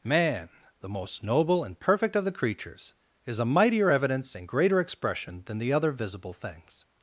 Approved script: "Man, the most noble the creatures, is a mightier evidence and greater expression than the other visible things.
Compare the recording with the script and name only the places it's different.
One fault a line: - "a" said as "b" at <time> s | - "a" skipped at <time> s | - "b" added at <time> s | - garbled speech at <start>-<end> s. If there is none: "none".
- "and perfect of" added at 1.6 s